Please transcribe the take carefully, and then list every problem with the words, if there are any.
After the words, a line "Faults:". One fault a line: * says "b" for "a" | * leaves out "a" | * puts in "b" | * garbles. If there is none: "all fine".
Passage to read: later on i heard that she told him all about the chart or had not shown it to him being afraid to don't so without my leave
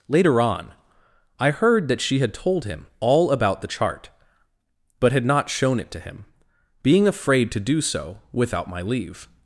later on i heard that she had told him all about the chart but had not shown it to him being afraid to do so without my leave
Faults:
* puts in "had"
* says "but" for "or"
* says "do" for "don't"